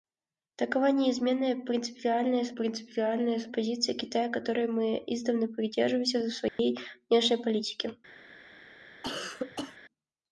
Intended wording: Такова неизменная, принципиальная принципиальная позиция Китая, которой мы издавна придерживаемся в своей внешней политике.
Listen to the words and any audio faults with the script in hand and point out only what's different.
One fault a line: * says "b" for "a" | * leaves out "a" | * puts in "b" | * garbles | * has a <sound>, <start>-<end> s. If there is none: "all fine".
* has a dropout, 6.5-6.6 s
* has a cough, 9.0-9.8 s